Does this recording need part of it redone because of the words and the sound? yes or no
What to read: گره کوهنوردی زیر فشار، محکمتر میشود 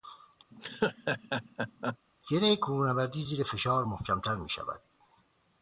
yes